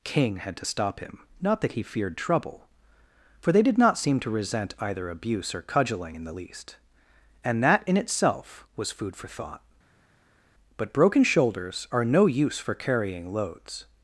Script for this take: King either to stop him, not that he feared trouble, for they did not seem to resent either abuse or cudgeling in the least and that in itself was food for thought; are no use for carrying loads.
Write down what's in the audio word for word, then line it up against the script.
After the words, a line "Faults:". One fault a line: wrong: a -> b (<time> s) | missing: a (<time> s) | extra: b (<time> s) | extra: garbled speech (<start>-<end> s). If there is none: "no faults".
King had to stop him, not that he feared trouble, for they did not seem to resent either abuse or cudgeling in the least and that in itself was food for thought; but broken shoulders are no use for carrying loads.
Faults:
wrong: either -> had (0.4 s)
extra: but broken shoulders (10.8 s)